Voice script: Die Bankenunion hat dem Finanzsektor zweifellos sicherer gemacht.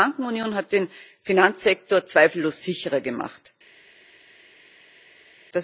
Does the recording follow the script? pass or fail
fail